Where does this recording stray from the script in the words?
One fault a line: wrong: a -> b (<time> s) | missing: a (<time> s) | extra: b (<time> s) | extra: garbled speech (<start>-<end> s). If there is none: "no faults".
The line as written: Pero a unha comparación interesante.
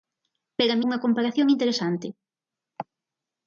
no faults